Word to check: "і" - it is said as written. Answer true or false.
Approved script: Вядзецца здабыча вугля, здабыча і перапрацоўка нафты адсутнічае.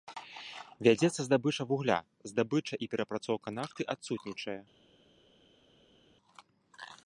true